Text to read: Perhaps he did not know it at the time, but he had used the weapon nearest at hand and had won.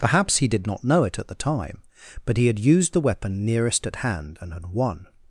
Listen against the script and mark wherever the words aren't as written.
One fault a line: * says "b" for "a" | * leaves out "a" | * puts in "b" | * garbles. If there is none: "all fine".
all fine